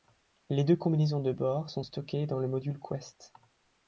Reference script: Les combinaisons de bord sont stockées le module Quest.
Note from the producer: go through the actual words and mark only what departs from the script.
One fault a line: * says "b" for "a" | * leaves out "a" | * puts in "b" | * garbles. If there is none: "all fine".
* puts in "deux"
* puts in "dans"